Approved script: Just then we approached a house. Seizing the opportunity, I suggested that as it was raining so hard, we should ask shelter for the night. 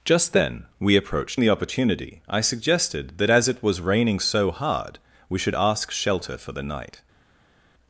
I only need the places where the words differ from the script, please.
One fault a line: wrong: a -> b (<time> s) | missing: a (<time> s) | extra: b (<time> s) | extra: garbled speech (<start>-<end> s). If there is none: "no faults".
missing: a house Seizing (1.4 s)